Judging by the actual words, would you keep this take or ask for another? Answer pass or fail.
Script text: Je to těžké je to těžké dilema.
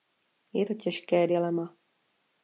fail